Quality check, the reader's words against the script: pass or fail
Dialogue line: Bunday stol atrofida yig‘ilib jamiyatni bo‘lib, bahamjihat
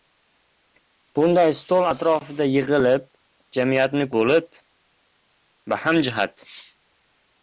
pass